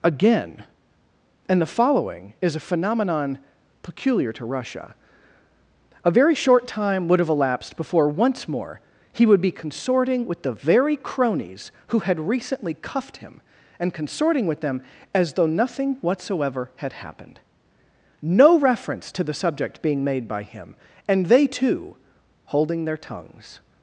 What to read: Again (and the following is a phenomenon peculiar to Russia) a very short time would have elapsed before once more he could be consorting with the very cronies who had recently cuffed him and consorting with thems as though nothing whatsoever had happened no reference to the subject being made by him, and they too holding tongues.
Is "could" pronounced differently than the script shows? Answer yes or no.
yes